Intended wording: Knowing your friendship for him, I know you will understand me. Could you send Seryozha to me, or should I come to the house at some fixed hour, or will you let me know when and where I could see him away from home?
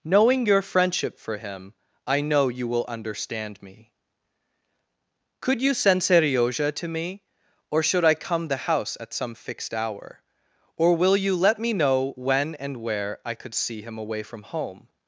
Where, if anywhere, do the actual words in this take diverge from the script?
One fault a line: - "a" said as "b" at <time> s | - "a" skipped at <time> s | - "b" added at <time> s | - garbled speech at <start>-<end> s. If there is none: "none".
- "to" skipped at 8.5 s